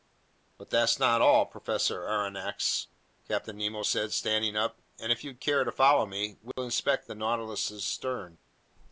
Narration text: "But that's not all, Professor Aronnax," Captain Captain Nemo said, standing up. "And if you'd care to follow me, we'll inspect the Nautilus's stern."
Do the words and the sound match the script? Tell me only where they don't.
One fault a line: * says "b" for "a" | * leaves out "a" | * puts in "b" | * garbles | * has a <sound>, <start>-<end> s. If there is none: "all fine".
* leaves out "Captain"
* has a dropout, 6.5-6.6 s